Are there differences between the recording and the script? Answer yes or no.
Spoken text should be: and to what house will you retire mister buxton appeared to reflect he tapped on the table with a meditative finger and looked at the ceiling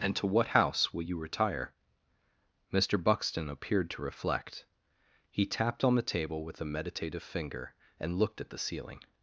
no